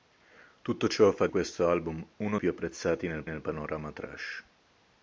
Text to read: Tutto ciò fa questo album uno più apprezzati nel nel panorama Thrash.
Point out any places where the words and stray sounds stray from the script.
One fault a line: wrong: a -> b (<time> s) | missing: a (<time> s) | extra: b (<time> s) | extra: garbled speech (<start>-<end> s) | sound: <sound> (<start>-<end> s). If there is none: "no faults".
no faults